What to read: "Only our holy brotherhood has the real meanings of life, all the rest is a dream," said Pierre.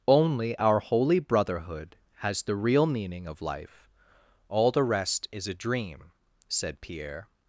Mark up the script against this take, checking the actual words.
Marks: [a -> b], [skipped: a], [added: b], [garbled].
"Only our holy brotherhood has the real [meanings -> meaning] of life, all the rest is a dream," said Pierre.